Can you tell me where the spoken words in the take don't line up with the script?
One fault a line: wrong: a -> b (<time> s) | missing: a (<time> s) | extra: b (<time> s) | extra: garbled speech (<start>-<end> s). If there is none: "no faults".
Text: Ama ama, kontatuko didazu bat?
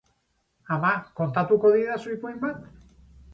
missing: ama (0.9 s)
extra: ipuin (2.1 s)